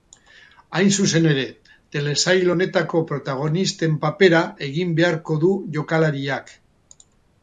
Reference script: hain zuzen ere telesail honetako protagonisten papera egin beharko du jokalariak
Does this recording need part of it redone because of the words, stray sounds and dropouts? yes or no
no